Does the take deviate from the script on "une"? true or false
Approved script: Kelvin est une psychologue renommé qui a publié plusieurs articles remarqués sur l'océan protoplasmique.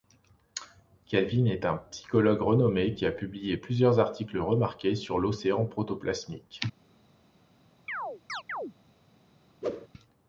true